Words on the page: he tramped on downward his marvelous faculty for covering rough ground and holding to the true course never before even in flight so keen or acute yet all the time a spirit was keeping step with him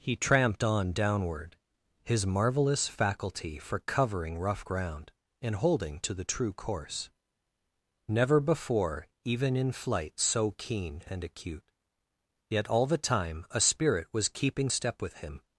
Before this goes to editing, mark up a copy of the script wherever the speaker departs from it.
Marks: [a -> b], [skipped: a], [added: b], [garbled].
he tramped on downward his marvelous faculty for covering rough ground and holding to the true course never before even in flight so keen [or -> and] acute yet all the time a spirit was keeping step with him